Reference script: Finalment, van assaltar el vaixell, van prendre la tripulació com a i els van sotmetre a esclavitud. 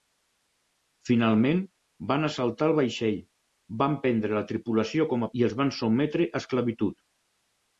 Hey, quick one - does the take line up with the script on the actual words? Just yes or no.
yes